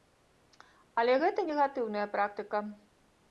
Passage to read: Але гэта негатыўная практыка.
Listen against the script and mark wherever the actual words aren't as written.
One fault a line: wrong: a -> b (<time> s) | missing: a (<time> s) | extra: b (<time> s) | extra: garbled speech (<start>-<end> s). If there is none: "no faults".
no faults